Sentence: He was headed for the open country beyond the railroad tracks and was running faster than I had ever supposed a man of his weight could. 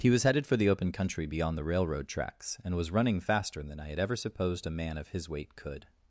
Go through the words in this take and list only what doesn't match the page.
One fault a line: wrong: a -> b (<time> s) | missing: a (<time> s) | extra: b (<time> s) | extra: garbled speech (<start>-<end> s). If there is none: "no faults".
no faults